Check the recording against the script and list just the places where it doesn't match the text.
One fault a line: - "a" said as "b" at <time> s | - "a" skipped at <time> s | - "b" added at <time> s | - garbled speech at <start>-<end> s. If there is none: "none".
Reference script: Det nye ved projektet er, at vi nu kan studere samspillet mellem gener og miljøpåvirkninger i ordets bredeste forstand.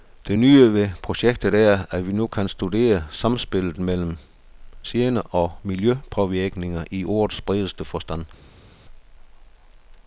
none